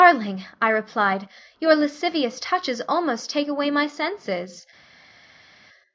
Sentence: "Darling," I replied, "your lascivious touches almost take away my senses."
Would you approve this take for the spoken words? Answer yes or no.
yes